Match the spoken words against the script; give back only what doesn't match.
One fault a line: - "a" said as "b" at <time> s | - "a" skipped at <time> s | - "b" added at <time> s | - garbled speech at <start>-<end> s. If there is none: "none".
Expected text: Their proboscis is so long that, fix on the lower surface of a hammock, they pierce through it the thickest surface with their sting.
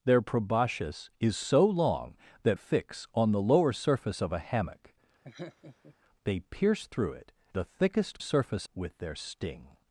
none